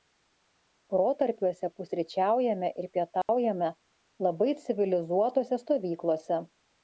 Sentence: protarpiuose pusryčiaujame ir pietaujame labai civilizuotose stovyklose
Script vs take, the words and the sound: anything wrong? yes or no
yes